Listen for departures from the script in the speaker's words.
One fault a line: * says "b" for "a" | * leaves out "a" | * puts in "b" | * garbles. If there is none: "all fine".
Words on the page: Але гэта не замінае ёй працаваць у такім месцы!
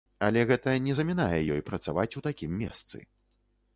all fine